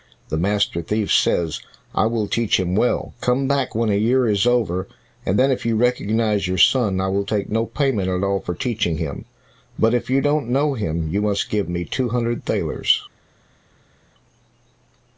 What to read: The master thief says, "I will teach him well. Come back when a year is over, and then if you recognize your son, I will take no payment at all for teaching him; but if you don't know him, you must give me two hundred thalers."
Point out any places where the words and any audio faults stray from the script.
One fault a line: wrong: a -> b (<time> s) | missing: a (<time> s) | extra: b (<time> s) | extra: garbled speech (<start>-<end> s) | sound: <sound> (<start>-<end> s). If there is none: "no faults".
no faults